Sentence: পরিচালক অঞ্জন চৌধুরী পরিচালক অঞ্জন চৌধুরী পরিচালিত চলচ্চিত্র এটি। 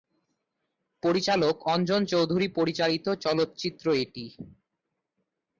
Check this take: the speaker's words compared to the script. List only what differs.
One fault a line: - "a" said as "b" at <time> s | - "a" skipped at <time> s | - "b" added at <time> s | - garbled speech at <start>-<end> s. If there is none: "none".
- "পরিচালক অঞ্জন চৌধুরী" skipped at 2.5 s